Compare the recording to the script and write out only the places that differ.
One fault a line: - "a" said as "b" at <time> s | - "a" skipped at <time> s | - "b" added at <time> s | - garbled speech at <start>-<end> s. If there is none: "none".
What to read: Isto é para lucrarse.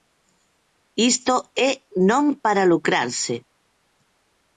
- "non" added at 2.1 s